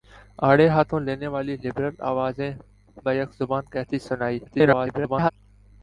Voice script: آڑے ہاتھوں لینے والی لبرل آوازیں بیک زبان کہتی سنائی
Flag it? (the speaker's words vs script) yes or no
yes